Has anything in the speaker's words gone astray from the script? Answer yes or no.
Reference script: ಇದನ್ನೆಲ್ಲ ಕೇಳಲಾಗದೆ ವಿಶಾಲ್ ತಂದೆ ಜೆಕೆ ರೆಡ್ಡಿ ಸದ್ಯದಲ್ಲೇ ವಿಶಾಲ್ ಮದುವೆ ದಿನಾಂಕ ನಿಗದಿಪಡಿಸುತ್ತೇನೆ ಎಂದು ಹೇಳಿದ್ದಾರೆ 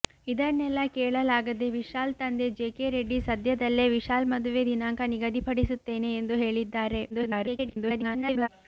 yes